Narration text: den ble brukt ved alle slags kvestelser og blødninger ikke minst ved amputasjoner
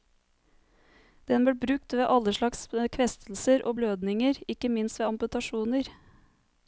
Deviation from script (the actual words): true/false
false